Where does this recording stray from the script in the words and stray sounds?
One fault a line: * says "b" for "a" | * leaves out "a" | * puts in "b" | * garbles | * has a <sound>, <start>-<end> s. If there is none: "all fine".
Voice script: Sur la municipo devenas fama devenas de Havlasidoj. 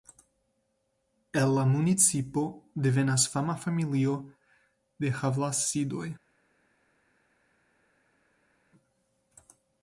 * says "El" for "Sur"
* says "familio" for "devenas"